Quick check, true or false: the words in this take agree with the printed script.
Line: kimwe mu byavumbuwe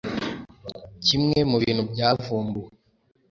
false